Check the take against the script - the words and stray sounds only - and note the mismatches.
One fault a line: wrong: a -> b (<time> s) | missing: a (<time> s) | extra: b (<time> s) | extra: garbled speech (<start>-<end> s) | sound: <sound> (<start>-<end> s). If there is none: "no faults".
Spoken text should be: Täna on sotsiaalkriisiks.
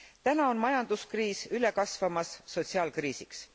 extra: majanduskriis üle kasvamas (0.6 s)